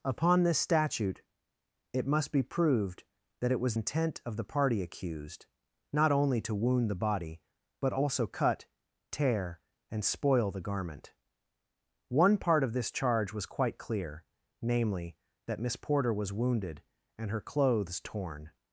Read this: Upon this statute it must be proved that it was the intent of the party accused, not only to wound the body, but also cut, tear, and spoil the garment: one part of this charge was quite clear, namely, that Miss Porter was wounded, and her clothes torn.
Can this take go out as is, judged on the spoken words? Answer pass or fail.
fail